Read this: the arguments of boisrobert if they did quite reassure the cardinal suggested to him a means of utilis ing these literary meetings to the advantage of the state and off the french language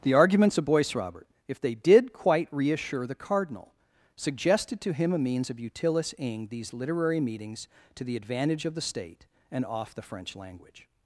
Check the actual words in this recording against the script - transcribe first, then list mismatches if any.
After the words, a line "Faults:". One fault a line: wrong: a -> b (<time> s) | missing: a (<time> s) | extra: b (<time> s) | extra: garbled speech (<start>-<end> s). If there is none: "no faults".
the arguments of boisrobert if they did quite reassure the cardinal suggested to him a means of utilis ing these literary meetings to the advantage of the state and off the french language
Faults:
no faults